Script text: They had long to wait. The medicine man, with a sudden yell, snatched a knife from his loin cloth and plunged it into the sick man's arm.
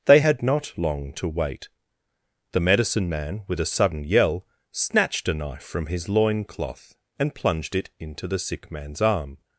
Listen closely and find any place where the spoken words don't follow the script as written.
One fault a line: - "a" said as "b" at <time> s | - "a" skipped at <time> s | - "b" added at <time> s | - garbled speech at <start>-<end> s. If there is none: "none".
- "not" added at 0.4 s